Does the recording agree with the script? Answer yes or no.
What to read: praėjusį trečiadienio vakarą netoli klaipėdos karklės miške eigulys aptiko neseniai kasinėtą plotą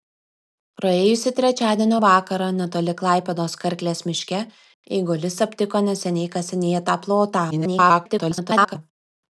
no